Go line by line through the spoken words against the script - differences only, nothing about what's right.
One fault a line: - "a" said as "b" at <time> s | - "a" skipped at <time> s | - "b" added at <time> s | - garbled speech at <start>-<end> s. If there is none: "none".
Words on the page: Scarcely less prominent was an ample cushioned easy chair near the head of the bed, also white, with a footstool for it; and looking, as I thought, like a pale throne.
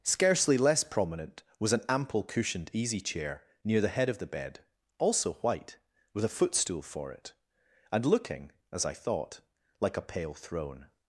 none